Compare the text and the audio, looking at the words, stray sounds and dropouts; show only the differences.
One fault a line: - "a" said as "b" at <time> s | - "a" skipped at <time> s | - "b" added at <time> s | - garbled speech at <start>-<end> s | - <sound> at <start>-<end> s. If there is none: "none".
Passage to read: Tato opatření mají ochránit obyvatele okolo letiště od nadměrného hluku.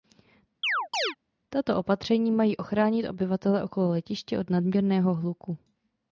- chirp at 0.6-1.2 s